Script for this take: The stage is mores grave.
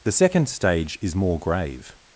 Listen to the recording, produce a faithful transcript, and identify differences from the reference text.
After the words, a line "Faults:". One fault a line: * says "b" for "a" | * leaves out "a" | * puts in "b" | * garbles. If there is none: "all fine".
The second stage is more grave.
Faults:
* puts in "second"
* says "more" for "mores"